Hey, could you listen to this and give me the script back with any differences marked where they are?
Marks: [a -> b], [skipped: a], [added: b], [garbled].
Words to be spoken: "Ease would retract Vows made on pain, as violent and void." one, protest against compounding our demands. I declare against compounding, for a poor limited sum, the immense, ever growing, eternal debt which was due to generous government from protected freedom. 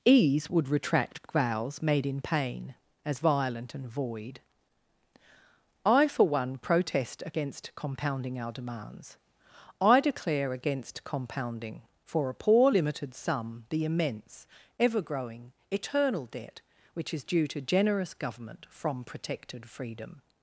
"Ease would retract Vows made [on -> in] pain, as violent and void." [added: I for] one, protest against compounding our demands. I declare against compounding, for a poor limited sum, the immense, ever growing, eternal debt which [was -> is] due to generous government from protected freedom.